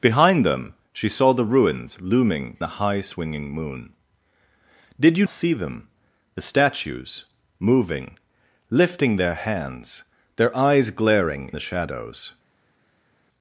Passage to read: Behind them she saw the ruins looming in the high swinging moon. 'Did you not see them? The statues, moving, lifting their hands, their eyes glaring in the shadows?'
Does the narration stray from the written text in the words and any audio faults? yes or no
yes